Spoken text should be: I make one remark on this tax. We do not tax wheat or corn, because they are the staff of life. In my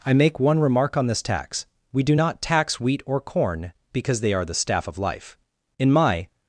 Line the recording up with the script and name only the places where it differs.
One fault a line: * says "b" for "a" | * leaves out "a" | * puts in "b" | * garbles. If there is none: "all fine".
all fine